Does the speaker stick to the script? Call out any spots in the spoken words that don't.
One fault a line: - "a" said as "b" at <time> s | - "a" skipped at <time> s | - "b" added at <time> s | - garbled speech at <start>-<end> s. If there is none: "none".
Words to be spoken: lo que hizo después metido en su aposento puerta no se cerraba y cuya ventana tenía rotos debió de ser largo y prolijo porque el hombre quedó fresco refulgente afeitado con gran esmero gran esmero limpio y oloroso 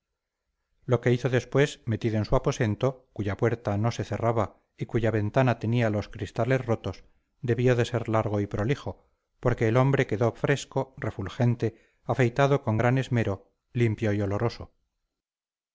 - "cuya" added at 3.1 s
- "los cristales" added at 5.9 s
- "gran esmero" skipped at 13.5 s